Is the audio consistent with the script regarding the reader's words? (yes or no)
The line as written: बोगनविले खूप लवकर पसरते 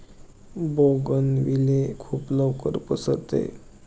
yes